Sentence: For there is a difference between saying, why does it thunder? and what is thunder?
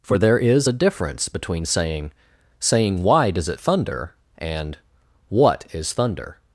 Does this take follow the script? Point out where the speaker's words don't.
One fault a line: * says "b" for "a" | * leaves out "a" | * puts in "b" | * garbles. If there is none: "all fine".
* puts in "saying"